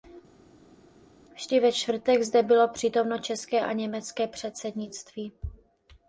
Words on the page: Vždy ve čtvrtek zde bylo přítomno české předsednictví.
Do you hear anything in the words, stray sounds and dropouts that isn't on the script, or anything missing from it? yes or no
yes